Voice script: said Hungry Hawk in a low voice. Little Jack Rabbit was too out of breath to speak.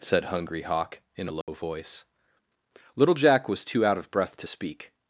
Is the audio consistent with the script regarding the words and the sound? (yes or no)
no